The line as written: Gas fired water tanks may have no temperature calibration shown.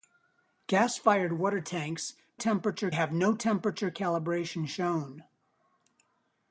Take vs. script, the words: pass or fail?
fail